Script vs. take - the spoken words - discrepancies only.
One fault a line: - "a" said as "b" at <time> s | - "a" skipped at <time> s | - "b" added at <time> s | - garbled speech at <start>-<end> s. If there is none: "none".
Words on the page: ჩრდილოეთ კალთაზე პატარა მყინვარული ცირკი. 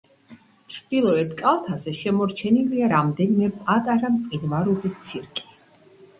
- "შემორჩენილია რამდენიმე" added at 2.0 s